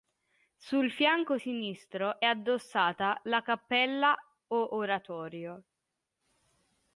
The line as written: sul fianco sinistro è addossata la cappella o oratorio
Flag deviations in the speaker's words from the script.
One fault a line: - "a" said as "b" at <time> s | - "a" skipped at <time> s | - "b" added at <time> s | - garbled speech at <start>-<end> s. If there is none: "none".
none